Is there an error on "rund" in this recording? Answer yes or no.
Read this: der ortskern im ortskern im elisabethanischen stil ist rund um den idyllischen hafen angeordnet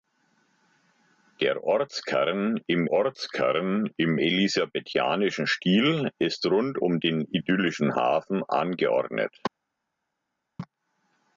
no